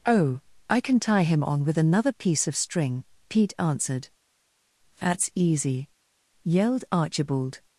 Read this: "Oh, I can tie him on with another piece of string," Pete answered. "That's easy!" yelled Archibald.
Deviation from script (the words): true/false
false